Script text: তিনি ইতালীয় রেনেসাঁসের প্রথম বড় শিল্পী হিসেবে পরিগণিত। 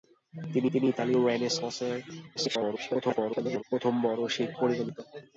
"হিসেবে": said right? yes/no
no